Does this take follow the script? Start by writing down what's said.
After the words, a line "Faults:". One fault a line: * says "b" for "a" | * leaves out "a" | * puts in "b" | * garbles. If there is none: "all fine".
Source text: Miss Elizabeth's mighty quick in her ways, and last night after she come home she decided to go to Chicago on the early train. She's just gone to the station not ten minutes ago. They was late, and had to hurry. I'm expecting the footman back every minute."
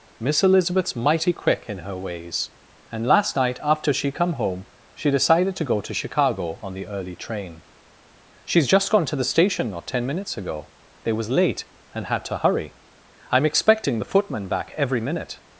Miss Elizabeth's mighty quick in her ways, and last night after she come home she decided to go to Chicago on the early train. She's just gone to the station not ten minutes ago. They was late, and had to hurry. I'm expecting the footman back every minute."
Faults:
all fine